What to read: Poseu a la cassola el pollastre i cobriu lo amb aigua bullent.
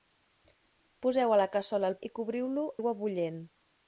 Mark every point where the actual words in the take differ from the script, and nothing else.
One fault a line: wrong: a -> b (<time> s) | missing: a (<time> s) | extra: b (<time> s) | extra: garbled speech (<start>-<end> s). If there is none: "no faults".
missing: pollastre (2.0 s)
missing: amb (2.7 s)